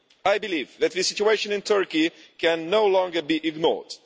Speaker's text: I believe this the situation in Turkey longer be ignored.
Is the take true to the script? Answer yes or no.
no